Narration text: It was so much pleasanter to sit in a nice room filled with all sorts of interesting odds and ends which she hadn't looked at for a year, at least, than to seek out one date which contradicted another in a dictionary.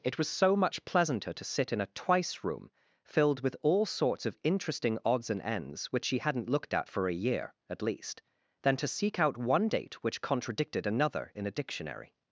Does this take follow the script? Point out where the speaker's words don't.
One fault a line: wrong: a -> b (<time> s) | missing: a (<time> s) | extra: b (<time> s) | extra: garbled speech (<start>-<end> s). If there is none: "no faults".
wrong: nice -> twice (1.9 s)